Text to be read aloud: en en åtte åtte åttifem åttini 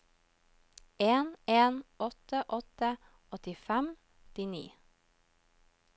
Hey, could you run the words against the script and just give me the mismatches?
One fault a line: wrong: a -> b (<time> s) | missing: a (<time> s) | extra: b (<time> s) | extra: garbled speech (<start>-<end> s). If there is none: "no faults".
no faults